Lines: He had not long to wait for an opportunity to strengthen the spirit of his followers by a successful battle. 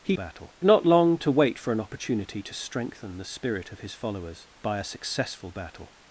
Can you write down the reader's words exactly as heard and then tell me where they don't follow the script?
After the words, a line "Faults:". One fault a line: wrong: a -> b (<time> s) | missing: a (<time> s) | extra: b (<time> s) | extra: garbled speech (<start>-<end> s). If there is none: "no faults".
He battle not long to wait for an opportunity to strengthen the spirit of his followers by a successful battle.
Faults:
wrong: had -> battle (0.1 s)